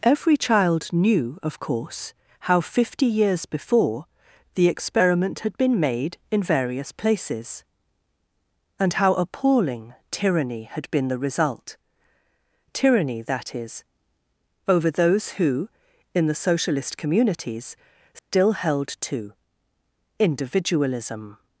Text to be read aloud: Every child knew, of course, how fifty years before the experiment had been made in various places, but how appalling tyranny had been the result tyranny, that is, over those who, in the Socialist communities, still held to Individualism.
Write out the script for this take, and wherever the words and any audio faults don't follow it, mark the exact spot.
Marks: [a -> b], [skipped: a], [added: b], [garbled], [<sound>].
Every child knew, of course, how fifty years before the experiment had been made in various places, [but -> and] how appalling tyranny had been the result tyranny, that is, over those who, in the Socialist communities, still [dropout] held to Individualism.